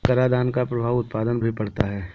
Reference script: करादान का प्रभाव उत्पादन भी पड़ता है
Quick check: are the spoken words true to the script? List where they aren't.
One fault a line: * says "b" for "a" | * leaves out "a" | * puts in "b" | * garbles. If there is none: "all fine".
all fine